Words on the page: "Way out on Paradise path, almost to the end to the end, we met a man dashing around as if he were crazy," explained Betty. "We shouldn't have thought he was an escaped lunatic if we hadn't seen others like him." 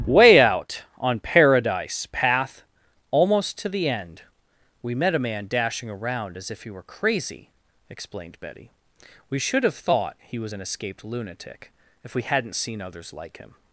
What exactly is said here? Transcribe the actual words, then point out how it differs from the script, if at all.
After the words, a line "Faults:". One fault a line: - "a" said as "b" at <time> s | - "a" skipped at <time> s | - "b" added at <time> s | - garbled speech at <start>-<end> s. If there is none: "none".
"Way out on Paradise path, almost to the end, we met a man dashing around as if he were crazy," explained Betty. "We should have thought he was an escaped lunatic if we hadn't seen others like him."
Faults:
- "to the end" skipped at 4.2 s
- "shouldn't" said as "should" at 9.4 s